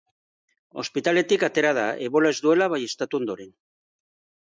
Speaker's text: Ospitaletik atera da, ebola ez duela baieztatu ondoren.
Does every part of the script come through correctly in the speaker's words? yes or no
yes